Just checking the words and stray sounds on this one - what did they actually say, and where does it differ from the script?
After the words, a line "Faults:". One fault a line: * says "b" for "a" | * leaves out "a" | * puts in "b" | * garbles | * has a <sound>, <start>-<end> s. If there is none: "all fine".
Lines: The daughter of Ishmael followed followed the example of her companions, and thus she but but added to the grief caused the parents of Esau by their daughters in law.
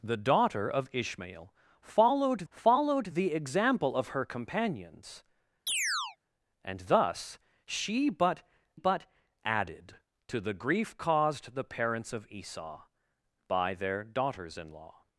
The daughter of Ishmael followed followed the example of her companions, and thus she but but added to the grief caused the parents of Esau by their daughters in law.
Faults:
* has a chirp, 5.7-6.2 s